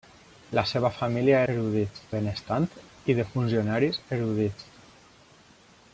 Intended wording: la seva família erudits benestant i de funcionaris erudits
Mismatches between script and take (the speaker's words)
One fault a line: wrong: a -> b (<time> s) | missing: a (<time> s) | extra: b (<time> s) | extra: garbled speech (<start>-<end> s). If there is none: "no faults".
no faults